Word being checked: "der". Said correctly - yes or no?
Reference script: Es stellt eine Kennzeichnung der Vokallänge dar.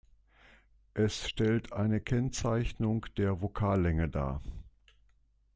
yes